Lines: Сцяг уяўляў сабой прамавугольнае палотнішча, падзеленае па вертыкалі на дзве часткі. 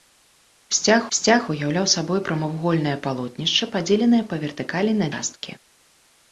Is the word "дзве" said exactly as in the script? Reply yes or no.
no